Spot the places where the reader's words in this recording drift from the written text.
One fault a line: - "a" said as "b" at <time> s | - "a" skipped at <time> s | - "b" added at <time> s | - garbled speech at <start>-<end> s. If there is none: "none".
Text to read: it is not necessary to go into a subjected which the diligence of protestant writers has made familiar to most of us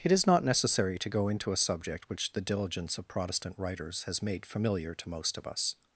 - "subjected" said as "subject" at 1.6 s